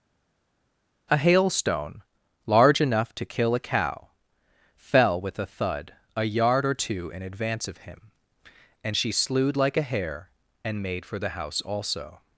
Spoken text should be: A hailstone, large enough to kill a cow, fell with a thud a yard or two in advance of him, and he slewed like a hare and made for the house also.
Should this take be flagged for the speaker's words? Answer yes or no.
yes